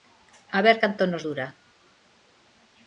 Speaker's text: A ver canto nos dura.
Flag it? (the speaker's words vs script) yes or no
no